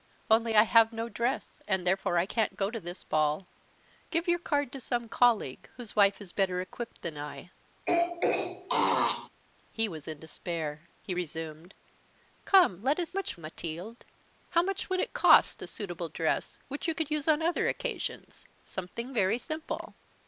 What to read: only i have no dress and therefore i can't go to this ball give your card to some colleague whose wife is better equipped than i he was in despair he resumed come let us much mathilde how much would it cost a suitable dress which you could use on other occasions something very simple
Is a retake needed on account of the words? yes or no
no